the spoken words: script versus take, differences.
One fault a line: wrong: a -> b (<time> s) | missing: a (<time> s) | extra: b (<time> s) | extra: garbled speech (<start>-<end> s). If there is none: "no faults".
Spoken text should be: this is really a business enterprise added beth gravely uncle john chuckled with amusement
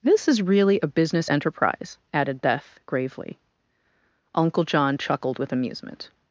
no faults